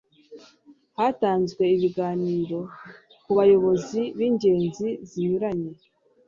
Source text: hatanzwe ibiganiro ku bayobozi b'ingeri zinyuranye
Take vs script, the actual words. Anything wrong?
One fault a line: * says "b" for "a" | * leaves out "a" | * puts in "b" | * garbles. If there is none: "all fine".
all fine